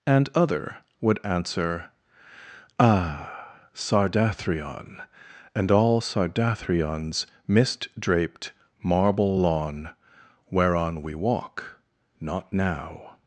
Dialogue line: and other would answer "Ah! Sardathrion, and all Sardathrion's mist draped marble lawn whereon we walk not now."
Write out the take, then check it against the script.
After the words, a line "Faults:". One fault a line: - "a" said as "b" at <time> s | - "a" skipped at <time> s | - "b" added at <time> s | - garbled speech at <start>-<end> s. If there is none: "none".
and other would answer "Ah! Sardathrion, and all Sardathrion's mist draped marble lawn whereon we walk not now."
Faults:
none